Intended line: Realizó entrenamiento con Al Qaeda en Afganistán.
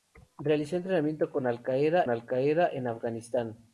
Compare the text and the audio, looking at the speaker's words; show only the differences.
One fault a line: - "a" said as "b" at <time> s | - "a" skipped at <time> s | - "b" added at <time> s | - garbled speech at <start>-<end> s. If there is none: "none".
- "Al Qaeda" added at 2.1 s